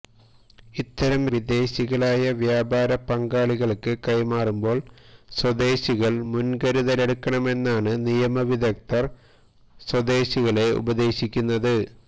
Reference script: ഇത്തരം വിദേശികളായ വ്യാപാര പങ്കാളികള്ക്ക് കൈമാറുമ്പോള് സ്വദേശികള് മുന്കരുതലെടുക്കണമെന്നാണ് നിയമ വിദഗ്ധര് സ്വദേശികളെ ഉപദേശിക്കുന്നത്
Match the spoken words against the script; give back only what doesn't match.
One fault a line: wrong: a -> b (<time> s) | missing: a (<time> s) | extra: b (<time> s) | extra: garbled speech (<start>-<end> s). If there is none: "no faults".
no faults